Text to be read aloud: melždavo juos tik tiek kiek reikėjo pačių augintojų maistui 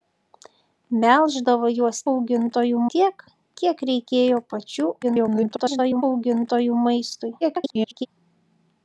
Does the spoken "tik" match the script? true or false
false